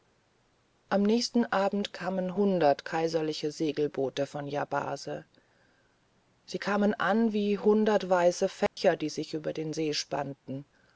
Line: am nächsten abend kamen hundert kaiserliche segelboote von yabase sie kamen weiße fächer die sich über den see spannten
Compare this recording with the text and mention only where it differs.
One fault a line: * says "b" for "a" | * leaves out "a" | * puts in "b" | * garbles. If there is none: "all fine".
* puts in "an wie hundert"